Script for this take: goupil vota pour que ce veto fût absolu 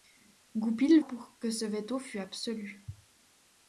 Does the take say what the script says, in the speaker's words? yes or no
no